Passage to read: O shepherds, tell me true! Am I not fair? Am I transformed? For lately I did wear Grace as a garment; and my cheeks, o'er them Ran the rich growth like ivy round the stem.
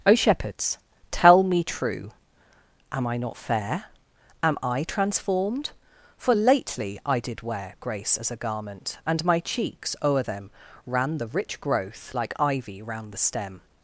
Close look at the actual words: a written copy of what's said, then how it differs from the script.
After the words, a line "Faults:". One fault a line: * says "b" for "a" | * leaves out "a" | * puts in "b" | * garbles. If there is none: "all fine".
O shepherds, tell me true! Am I not fair? Am I transformed? For lately I did wear Grace as a garment; and my cheeks, o'er them Ran the rich growth like ivy round the stem.
Faults:
all fine